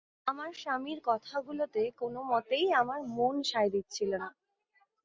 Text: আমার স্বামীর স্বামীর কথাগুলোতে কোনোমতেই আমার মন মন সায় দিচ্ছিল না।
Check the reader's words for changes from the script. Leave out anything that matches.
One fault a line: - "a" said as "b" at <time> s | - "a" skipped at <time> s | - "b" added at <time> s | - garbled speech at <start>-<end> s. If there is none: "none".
- "স্বামীর" skipped at 1.0 s
- "মন" skipped at 3.4 s